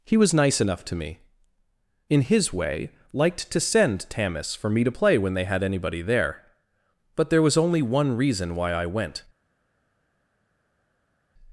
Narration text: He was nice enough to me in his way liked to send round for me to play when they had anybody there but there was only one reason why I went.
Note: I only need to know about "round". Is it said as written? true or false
false